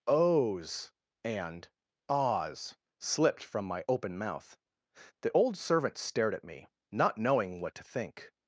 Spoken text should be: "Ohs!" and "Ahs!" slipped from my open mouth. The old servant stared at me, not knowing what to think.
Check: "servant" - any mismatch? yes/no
no